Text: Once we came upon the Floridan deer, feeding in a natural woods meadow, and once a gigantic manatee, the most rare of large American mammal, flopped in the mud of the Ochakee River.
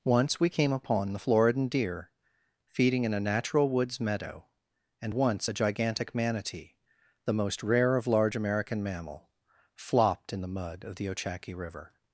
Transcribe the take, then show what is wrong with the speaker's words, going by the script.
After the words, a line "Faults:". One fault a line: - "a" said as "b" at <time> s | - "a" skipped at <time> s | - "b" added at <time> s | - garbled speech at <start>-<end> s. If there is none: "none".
Once we came upon the Floridan deer, feeding in a natural woods meadow, and once a gigantic manatee, the most rare of large American mammal, flopped in the mud of the Ochakee River.
Faults:
none